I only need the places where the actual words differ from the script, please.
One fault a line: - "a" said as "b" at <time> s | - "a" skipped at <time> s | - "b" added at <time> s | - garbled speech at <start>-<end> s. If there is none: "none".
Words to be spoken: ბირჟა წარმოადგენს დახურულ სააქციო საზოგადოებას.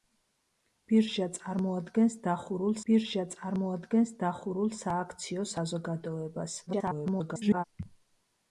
- "ბირჟა წარმოადგენს დახურულ" added at 2.9 s
- garbled speech at 6.7-7.6 s